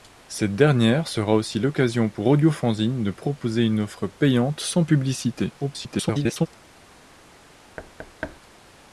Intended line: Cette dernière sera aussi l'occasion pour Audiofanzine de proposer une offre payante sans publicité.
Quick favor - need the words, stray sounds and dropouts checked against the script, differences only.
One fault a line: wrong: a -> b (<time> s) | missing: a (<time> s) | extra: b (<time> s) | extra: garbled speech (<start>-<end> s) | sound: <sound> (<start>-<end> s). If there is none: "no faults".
extra: garbled speech (5.6-6.5 s)
sound: thud (7.8-8.4 s)